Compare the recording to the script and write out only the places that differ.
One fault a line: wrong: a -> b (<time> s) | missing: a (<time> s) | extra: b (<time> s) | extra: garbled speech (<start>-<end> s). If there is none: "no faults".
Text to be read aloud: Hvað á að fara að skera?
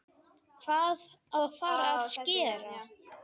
no faults